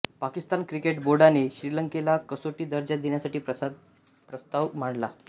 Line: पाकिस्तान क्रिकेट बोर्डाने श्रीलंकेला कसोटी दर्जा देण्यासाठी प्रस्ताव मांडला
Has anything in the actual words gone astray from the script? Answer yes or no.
no